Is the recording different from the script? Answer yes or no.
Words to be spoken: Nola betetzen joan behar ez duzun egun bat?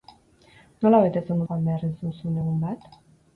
no